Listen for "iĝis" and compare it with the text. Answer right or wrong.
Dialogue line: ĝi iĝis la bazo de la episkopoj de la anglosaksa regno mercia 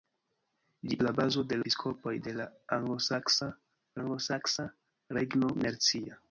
wrong